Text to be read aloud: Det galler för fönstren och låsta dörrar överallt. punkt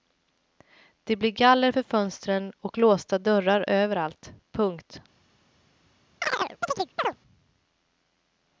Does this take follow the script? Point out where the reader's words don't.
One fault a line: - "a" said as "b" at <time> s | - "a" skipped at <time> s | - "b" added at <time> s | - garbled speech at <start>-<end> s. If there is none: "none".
- "blir" added at 1.1 s